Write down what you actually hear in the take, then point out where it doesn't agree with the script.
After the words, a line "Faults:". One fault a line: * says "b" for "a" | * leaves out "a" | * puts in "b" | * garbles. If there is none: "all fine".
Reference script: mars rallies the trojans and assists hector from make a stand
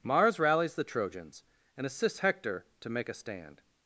mars rallies the trojans and assists hector to make a stand
Faults:
* says "to" for "from"